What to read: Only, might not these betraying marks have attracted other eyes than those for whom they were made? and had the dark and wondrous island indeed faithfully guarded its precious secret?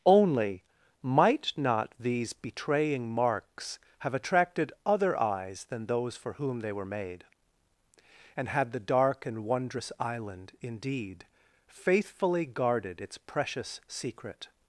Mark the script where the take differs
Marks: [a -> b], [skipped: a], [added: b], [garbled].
Only, might not these betraying marks have attracted other eyes than those for whom they were made? and had the dark and wondrous island indeed faithfully guarded its precious secret?